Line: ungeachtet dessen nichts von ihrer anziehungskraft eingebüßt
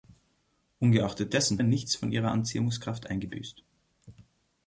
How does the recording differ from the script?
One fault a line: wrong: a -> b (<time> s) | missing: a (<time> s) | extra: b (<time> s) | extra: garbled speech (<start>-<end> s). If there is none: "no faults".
no faults